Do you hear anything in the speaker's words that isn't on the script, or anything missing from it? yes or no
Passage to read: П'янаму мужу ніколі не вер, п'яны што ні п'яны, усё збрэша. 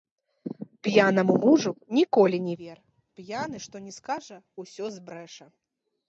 yes